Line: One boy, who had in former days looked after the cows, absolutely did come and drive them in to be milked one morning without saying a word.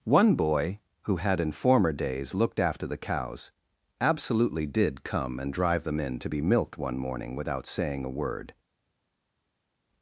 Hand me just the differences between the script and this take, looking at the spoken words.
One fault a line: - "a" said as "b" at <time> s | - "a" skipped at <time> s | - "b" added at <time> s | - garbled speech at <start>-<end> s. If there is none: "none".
none